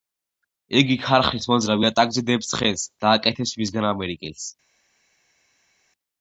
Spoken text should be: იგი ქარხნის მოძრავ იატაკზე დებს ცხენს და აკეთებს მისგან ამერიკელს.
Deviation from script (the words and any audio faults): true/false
false